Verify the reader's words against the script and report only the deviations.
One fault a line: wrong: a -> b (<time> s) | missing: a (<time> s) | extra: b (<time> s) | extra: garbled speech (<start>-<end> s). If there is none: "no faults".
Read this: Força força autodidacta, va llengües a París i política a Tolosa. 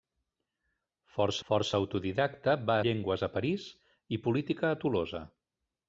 no faults